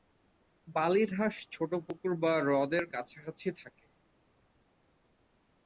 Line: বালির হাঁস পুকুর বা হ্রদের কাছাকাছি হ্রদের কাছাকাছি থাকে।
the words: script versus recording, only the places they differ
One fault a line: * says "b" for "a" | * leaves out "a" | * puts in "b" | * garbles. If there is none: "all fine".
* puts in "ছোট"
* leaves out "হ্রদের কাছাকাছি"